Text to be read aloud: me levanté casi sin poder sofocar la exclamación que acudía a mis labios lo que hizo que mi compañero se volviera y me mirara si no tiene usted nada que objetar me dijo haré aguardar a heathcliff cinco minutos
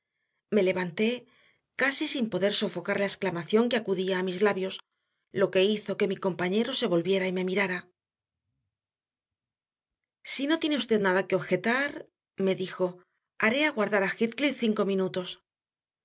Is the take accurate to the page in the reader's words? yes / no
yes